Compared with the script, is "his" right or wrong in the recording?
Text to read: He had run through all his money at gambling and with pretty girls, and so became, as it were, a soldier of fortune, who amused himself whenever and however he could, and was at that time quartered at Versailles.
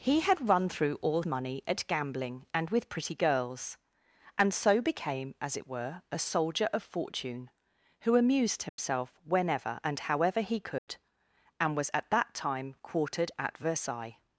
wrong